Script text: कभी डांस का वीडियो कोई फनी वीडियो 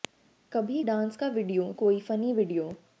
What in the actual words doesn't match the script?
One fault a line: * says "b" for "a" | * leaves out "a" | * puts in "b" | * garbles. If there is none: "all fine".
all fine